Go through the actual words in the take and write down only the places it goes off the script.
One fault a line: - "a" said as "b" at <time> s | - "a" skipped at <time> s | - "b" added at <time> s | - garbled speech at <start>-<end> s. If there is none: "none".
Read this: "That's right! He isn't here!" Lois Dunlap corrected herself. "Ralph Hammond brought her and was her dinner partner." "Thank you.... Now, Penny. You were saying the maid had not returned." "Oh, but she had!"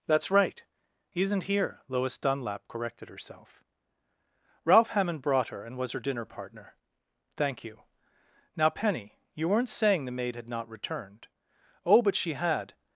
- "were" said as "weren't" at 9.5 s